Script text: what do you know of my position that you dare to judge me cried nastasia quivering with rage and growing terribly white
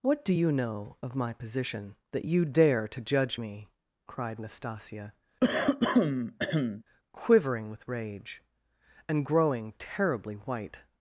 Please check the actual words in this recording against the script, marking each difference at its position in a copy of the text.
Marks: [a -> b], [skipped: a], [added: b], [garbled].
what do you know of my position that you dare to judge me cried nastasia quivering with rage and growing terribly white